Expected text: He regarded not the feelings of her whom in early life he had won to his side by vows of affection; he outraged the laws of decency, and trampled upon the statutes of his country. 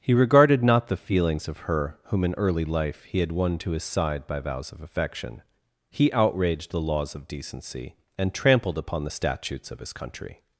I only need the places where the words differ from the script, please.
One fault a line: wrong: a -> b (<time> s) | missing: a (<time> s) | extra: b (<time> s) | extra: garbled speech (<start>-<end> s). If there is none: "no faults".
no faults